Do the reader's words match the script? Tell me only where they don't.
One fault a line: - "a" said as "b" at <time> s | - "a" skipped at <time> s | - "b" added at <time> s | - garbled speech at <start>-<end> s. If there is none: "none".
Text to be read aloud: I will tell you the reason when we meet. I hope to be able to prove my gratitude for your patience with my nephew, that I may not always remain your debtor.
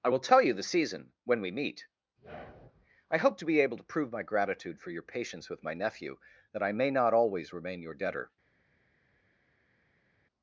- "reason" said as "season" at 0.6 s